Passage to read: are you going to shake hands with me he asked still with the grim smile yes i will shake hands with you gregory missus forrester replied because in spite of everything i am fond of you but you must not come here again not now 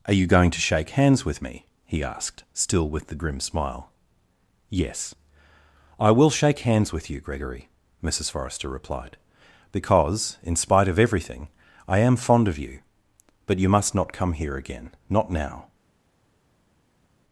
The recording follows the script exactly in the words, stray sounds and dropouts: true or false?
true